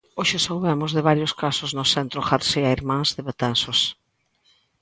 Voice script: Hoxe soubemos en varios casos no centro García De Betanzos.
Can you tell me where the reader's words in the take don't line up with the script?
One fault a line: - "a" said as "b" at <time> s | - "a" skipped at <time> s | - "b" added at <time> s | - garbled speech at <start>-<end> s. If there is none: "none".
- "en" said as "de" at 0.9 s
- "Irmáns" added at 2.8 s